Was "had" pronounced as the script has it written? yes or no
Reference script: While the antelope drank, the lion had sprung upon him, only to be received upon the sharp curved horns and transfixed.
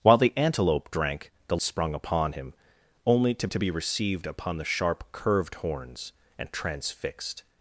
no